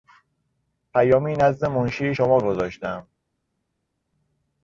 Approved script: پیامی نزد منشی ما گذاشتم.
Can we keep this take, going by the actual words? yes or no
no